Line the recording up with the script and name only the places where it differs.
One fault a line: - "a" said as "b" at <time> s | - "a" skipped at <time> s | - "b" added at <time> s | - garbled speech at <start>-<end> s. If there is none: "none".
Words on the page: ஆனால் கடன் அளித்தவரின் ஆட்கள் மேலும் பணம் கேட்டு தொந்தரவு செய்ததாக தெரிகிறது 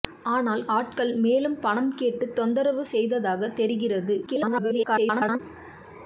- "கடன் அளித்தவரின்" skipped at 0.6 s
- garbled speech at 4.3-5.4 s